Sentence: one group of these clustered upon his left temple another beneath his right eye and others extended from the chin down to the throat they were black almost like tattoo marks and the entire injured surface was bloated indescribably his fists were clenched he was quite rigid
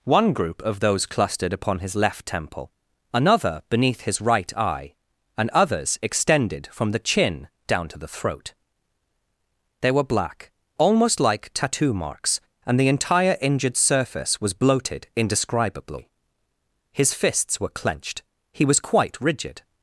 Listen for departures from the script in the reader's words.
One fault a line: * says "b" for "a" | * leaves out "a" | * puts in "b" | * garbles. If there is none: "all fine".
* says "those" for "these"